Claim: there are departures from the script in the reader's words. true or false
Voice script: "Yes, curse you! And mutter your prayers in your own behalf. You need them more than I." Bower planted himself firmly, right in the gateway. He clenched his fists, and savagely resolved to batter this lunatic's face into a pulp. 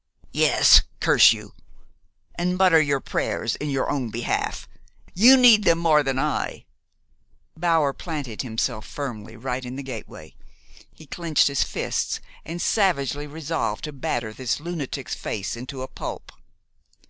false